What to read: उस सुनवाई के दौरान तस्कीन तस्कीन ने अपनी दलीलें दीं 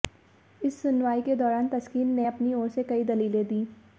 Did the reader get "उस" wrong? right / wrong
wrong